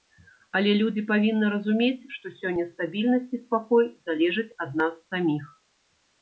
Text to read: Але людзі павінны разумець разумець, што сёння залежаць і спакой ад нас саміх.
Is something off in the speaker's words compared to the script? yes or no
yes